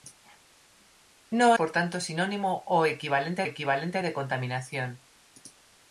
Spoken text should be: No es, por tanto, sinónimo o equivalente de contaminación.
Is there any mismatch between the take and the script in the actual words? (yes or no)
yes